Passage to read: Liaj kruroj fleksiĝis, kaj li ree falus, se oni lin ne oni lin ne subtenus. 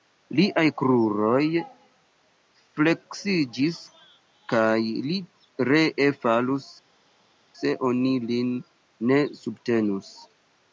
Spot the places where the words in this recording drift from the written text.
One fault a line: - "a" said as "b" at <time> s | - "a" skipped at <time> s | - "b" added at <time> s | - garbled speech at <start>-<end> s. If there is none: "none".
- "oni lin ne" skipped at 9.2 s